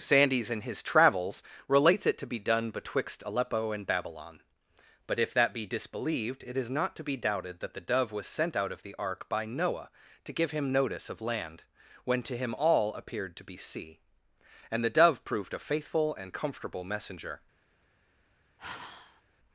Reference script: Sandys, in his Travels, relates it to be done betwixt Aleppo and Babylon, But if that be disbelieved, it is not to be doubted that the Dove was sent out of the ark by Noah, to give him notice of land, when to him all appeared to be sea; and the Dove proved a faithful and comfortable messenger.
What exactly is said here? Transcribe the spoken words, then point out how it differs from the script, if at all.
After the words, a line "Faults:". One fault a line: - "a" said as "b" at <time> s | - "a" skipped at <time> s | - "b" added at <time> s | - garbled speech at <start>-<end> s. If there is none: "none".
Sandys, in his Travels, relates it to be done betwixt Aleppo and Babylon, But if that be disbelieved, it is not to be doubted that the Dove was sent out of the ark by Noah, to give him notice of land, when to him all appeared to be sea; and the Dove proved a faithful and comfortable messenger.
Faults:
none